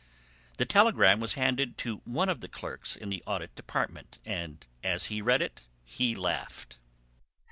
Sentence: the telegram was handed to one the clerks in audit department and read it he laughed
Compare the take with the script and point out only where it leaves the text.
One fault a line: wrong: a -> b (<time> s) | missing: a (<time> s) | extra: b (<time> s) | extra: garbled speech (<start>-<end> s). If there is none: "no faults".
extra: of (2.3 s)
extra: the (3.1 s)
extra: as he (4.8 s)